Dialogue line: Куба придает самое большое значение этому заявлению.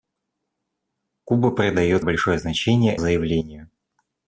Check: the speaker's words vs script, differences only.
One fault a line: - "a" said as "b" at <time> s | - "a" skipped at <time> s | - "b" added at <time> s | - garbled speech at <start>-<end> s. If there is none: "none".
- "самое" skipped at 2.0 s
- "этому" skipped at 3.0 s